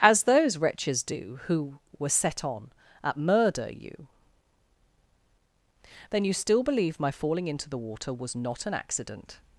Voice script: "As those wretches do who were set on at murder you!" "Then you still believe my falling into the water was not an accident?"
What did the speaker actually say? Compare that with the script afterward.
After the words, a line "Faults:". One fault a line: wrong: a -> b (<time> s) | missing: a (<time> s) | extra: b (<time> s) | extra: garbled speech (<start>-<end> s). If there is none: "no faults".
"As those wretches do who were set on at murder you!" "Then you still believe my falling into the water was not an accident?"
Faults:
no faults